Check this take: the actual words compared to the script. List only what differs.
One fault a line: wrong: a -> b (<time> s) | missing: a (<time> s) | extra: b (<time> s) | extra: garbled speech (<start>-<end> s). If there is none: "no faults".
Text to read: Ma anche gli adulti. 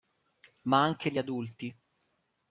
no faults